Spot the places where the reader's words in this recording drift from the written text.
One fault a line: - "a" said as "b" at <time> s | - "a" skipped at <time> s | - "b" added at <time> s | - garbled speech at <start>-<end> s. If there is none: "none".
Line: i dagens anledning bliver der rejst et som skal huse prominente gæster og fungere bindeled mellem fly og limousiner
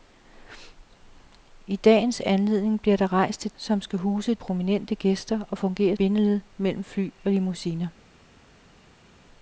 none